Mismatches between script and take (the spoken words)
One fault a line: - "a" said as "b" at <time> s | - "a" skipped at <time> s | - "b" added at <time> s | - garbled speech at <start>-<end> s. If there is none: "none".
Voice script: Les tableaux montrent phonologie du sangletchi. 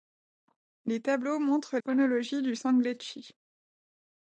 none